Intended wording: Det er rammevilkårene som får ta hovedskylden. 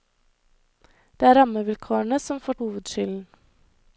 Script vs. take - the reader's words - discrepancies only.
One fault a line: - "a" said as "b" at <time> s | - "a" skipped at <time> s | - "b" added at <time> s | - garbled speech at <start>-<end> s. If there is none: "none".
- "ta" skipped at 2.5 s